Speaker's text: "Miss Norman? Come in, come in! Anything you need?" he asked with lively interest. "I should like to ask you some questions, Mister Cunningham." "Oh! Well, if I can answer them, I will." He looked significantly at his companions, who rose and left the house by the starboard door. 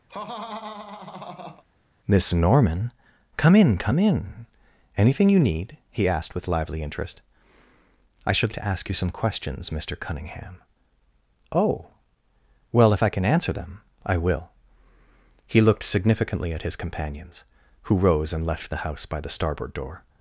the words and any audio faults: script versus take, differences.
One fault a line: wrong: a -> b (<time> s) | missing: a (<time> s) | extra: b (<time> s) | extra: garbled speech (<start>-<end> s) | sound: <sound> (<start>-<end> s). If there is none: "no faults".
sound: laugh (0.1-1.6 s)
missing: like (8.5 s)